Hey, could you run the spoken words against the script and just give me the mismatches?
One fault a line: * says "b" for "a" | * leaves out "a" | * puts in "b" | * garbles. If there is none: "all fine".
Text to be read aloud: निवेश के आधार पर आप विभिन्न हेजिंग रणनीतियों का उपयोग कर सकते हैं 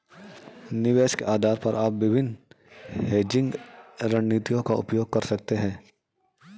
all fine